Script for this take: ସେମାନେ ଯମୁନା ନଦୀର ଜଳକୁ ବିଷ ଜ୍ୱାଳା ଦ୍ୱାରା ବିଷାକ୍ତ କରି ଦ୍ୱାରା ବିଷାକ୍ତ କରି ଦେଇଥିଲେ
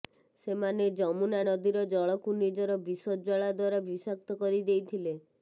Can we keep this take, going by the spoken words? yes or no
no